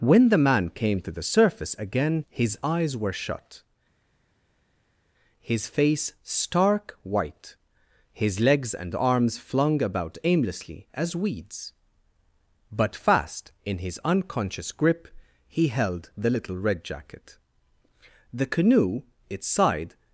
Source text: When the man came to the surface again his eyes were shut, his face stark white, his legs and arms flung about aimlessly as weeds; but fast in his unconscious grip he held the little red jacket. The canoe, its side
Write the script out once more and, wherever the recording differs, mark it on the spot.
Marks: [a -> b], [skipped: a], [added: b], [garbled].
When the man came to the surface again his eyes were shut, his face stark white, his legs and arms flung about aimlessly as weeds; but fast in his unconscious grip he held the little red jacket. The canoe, its side